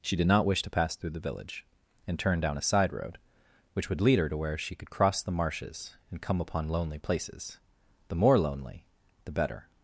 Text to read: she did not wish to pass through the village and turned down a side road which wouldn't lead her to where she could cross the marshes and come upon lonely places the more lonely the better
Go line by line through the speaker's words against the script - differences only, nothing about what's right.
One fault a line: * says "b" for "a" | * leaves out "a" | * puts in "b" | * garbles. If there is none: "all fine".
* says "would" for "wouldn't"